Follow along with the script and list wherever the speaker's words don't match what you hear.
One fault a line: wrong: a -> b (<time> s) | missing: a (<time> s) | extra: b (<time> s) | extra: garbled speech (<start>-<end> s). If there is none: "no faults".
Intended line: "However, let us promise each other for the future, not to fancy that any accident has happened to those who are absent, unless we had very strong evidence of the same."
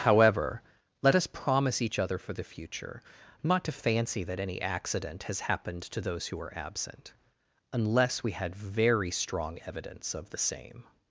no faults